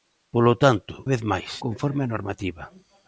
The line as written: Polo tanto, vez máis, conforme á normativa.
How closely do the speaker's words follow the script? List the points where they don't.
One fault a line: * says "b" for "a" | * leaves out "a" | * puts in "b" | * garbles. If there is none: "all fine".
all fine